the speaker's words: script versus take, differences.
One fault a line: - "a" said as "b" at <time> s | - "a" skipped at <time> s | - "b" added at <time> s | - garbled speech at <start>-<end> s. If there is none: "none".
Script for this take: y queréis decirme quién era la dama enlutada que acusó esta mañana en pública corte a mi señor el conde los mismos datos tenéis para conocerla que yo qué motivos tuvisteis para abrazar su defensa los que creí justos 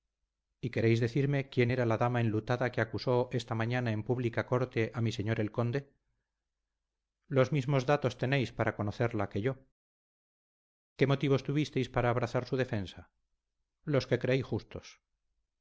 none